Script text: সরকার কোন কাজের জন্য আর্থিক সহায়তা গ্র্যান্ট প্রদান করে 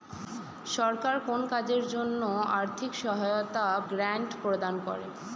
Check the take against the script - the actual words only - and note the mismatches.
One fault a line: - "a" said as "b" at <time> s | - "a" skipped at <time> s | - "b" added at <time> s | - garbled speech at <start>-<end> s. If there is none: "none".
none